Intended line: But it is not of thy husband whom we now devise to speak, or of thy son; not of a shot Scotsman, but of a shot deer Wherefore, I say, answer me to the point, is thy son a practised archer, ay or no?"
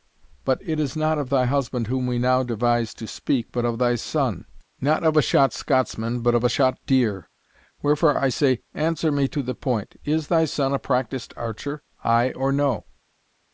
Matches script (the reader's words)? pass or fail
fail